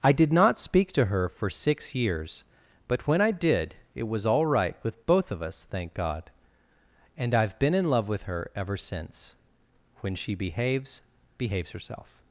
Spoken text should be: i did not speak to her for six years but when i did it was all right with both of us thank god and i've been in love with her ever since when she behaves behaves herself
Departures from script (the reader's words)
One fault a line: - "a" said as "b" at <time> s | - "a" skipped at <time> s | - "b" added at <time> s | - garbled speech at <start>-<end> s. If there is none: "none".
none